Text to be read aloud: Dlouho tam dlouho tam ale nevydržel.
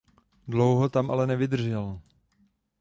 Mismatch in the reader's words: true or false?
true